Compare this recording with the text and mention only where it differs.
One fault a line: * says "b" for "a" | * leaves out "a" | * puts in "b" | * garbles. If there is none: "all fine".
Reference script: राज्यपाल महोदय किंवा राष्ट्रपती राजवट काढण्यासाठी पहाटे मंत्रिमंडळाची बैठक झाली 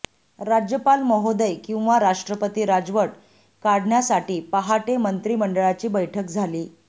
all fine